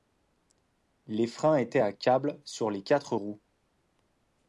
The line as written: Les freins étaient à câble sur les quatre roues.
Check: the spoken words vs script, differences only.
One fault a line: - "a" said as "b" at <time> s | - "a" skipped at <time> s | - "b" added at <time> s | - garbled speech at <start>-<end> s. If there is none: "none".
none